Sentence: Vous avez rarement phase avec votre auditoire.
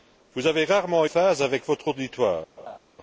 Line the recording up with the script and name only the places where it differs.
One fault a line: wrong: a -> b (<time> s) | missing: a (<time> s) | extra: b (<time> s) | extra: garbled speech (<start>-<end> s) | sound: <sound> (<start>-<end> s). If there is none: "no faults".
sound: laugh (2.6-2.8 s)